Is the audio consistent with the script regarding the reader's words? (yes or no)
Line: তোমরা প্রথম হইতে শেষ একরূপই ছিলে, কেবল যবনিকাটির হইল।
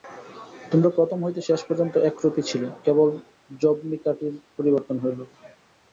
no